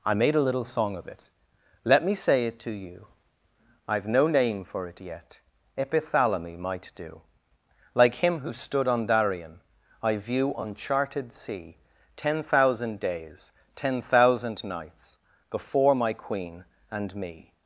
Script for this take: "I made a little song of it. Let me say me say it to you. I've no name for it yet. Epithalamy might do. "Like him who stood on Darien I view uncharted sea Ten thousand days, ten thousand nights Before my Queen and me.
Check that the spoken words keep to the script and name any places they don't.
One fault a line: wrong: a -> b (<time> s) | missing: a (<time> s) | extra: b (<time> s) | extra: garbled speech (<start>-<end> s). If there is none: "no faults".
missing: me say (2.5 s)